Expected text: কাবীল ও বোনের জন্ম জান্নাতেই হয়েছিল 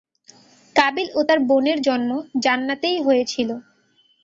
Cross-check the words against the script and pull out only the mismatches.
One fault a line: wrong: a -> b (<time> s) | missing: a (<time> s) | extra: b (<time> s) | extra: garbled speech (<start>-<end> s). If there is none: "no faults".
extra: তার (1.3 s)